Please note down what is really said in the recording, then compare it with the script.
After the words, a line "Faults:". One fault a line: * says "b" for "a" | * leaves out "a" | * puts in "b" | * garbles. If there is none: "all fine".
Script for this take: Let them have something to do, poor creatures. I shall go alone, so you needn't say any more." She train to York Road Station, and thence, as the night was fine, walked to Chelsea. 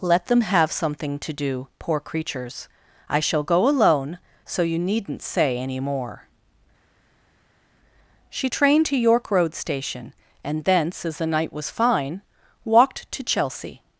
Let them have something to do, poor creatures. I shall go alone, so you needn't say any more." She train to York Road Station, and thence, as the night was fine, walked to Chelsea.
Faults:
all fine